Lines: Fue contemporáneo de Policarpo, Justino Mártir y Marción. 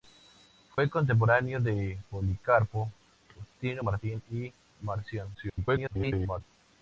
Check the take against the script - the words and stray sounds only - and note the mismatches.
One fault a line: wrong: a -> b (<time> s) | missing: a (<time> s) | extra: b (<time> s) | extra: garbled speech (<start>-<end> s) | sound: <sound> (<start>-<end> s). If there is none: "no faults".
sound: dropout (0.7-0.8 s)
extra: garbled speech (5.3-6.4 s)